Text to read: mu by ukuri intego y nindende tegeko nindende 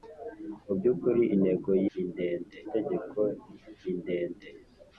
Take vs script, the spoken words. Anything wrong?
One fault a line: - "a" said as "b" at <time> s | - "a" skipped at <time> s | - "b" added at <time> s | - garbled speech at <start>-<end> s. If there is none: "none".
none